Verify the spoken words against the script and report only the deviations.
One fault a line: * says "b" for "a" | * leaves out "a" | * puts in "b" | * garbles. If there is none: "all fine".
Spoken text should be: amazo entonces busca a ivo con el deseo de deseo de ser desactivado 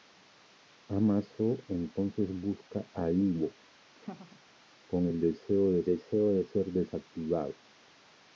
all fine